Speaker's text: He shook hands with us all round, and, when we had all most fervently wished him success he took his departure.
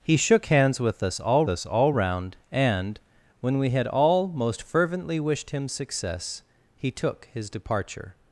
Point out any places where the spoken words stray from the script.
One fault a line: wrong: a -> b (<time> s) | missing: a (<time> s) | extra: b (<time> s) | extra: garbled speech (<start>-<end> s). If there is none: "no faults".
extra: us all (1.5 s)